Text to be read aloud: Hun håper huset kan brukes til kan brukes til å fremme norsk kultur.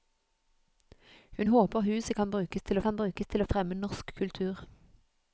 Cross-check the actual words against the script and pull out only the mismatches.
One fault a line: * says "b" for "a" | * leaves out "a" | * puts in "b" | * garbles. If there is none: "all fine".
all fine